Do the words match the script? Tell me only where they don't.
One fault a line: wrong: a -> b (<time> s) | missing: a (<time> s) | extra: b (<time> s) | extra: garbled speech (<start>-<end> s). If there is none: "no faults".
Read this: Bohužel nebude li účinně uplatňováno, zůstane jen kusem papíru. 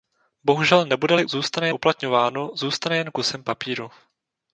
wrong: účinně -> zůstane (1.2 s)